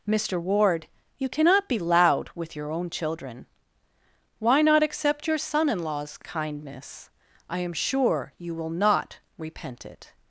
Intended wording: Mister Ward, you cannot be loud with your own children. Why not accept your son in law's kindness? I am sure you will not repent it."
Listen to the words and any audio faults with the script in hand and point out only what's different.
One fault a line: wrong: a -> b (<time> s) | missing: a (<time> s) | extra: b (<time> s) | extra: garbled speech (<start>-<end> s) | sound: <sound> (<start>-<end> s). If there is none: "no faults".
no faults